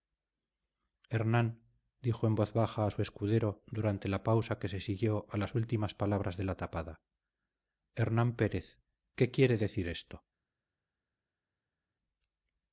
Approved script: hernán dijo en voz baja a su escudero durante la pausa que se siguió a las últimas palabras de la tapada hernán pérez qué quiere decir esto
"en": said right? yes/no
yes